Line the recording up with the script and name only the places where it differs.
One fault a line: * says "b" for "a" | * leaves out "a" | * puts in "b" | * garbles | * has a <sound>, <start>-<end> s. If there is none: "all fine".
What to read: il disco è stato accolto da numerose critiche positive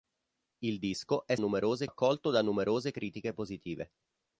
* says "numerose" for "stato"